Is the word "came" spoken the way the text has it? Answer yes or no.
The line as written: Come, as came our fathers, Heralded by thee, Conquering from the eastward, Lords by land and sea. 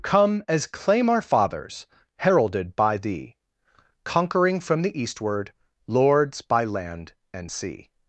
no